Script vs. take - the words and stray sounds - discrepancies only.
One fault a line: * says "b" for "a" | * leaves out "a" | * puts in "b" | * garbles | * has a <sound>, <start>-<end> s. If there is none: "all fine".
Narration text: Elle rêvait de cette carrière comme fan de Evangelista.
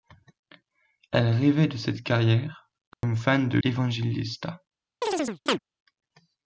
* has a dropout, 2.9-3.0 s
* has a chirp, 5.0-5.6 s